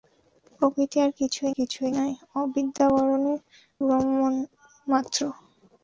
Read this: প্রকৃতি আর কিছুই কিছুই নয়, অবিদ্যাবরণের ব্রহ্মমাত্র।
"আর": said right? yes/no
yes